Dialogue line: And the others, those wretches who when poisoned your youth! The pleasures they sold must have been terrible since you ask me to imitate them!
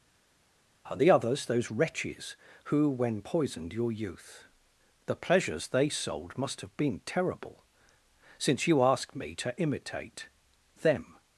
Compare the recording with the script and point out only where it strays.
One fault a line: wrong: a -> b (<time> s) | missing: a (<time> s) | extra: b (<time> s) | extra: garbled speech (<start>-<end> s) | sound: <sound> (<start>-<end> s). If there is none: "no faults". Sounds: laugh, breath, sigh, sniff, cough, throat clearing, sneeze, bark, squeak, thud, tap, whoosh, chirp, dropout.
no faults